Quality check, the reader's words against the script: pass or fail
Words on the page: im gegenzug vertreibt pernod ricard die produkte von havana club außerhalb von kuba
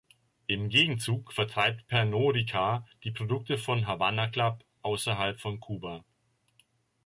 pass